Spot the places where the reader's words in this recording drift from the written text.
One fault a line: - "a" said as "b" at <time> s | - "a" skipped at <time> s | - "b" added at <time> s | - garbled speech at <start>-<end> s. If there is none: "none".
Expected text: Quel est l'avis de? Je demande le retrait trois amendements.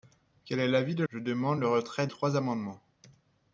none